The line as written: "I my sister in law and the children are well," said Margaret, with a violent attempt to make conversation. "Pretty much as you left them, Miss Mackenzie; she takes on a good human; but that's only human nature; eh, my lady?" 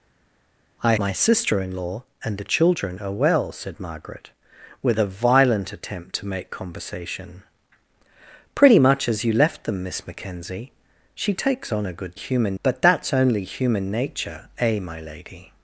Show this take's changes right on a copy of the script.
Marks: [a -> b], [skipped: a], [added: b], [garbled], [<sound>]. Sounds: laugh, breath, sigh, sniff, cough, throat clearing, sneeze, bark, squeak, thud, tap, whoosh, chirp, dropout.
"I my sister in law and the children are well," said Margaret, with a violent attempt to make conversation. "Pretty much as you left them, Miss Mackenzie; she takes on a good human; but that's only human nature; eh, my lady?"